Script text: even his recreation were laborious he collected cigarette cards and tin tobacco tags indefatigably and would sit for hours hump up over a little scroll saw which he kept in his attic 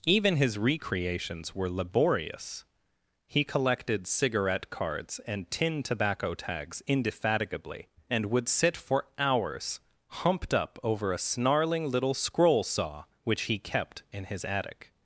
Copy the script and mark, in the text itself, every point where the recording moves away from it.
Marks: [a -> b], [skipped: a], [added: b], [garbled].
even his [recreation -> recreations] were laborious he collected cigarette cards and tin tobacco tags indefatigably and would sit for hours [hump -> humped] up over a [added: snarling] little scroll saw which he kept in his attic